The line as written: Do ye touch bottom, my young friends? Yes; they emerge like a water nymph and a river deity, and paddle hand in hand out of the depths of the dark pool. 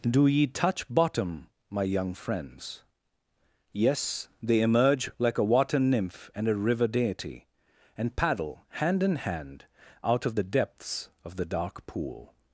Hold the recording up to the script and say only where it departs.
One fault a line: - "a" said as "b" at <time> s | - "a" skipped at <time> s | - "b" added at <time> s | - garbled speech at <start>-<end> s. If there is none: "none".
none